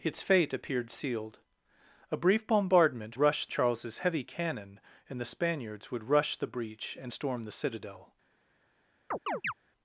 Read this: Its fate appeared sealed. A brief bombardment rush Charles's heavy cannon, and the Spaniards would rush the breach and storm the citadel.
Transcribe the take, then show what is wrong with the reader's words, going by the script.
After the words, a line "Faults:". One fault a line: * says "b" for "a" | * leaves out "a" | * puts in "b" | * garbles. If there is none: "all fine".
Its fate appeared sealed. A brief bombardment rush Charles's heavy cannon, and the Spaniards would rush the breach and storm the citadel.
Faults:
all fine